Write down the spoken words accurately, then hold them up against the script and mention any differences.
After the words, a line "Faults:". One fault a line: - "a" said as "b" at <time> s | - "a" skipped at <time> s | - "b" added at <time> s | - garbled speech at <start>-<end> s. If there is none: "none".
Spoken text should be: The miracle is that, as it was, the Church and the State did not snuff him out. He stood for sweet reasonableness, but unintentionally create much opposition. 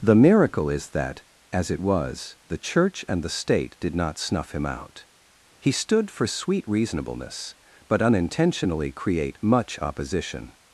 The miracle is that, as it was, the Church and the State did not snuff him out. He stood for sweet reasonableness, but unintentionally create much opposition.
Faults:
none